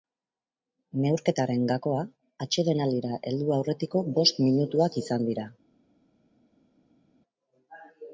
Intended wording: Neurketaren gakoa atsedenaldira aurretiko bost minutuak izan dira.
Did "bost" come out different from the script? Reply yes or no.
no